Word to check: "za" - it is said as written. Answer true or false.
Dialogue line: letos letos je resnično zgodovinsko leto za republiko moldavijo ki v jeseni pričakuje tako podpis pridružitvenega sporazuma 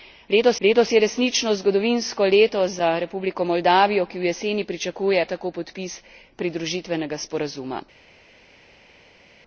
true